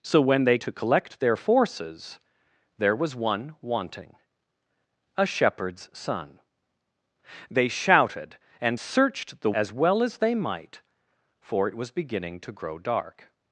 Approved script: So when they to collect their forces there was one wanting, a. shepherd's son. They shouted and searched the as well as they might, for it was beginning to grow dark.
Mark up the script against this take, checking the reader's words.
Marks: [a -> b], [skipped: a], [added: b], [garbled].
So when they to collect their forces there was one wanting, a. shepherd's son. They shouted and searched the as well as they might, for it was beginning to grow dark.